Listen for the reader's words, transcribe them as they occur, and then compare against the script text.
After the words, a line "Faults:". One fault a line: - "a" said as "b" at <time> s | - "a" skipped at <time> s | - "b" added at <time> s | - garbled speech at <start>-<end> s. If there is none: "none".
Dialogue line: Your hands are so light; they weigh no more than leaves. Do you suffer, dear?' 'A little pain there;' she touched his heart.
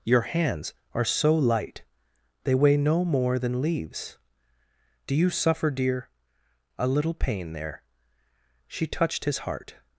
Your hands are so light; they weigh no more than leaves. Do you suffer, dear?' 'A little pain there;' she touched his heart.
Faults:
none